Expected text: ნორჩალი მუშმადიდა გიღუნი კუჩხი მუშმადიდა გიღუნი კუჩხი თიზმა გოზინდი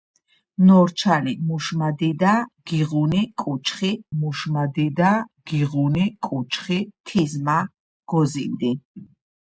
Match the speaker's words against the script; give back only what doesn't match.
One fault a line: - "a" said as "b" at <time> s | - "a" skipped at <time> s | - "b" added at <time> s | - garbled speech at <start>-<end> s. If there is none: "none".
none